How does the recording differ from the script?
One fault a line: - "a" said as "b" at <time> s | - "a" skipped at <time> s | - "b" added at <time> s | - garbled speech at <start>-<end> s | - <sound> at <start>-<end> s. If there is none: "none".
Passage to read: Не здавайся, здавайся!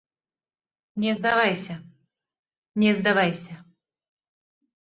- "не" added at 2.7 s